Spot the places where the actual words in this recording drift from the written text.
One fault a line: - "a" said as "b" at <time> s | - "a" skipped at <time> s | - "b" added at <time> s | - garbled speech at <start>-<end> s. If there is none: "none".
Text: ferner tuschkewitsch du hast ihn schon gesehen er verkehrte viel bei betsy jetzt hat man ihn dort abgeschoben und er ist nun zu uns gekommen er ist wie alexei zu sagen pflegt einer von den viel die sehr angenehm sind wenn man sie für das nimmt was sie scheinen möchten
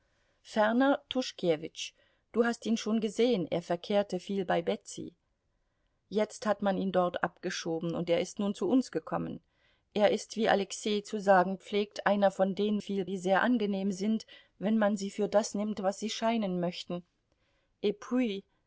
none